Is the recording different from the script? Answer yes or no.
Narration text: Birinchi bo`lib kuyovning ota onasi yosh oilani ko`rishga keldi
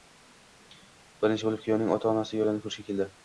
yes